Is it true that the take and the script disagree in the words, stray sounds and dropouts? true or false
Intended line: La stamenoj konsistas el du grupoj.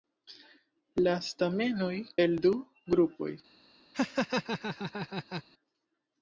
true